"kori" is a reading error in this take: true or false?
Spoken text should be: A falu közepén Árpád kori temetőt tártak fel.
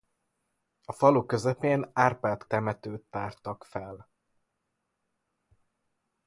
true